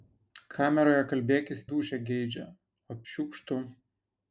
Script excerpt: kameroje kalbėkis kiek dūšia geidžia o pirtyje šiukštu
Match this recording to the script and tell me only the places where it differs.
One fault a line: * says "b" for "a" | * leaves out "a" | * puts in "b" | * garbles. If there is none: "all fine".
* leaves out "kiek"
* leaves out "pirtyje"